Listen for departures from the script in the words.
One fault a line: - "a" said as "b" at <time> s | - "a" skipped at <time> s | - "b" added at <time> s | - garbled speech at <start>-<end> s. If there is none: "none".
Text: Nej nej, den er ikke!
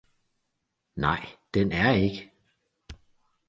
- "nej" skipped at 1.2 s